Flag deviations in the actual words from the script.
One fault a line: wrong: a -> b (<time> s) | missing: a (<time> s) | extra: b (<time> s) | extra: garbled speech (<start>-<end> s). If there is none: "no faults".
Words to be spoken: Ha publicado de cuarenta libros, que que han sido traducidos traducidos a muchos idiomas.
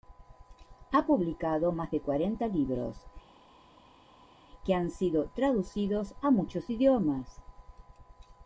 extra: más (1.7 s)
missing: que (4.7 s)
missing: traducidos (6.1 s)